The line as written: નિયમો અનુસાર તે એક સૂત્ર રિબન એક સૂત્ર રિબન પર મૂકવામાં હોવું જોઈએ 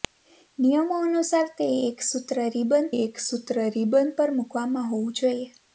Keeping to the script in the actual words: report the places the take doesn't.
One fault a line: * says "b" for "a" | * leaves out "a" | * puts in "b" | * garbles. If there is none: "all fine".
all fine